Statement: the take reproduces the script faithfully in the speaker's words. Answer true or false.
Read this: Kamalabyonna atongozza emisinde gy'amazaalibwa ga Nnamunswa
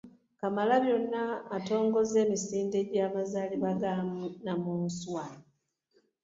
true